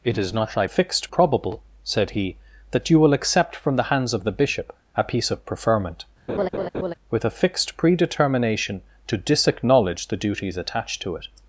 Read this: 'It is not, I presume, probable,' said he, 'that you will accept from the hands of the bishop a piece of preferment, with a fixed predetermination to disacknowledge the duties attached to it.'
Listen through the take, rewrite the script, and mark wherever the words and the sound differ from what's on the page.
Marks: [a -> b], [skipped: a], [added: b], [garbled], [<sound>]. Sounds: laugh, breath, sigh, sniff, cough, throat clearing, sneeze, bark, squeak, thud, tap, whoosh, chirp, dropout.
'It is not, I [presume, -> fixed] probable,' said he, 'that you will accept from the hands of the bishop a piece of preferment, [laugh] with a fixed predetermination to disacknowledge the duties attached to it.'